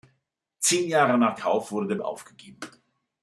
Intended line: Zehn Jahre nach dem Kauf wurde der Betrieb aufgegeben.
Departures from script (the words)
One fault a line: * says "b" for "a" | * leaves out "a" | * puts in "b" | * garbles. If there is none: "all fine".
* leaves out "dem"
* leaves out "Betrieb"